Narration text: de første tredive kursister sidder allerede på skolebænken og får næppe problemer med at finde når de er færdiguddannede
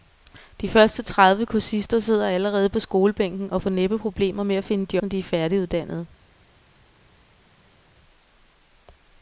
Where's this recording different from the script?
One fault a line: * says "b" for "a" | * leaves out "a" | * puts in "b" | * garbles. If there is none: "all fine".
all fine